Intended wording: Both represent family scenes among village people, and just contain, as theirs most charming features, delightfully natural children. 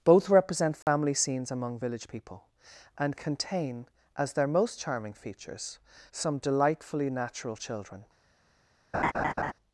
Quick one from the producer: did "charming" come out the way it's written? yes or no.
yes